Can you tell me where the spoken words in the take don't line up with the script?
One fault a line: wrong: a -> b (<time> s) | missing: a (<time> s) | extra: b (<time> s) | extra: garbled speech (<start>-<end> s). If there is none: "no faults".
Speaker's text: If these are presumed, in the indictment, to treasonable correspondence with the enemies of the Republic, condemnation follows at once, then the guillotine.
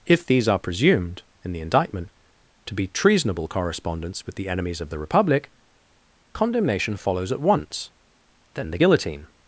extra: be (2.7 s)